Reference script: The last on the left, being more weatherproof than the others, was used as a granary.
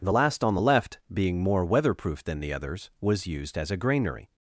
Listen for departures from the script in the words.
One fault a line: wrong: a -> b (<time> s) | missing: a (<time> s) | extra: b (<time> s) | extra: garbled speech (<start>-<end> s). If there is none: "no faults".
no faults